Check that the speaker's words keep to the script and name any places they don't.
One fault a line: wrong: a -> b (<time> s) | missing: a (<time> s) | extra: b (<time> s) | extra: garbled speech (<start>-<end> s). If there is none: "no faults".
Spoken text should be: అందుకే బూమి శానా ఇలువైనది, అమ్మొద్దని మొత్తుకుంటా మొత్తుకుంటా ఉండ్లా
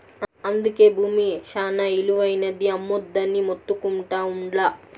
missing: మొత్తుకుంటా (4.2 s)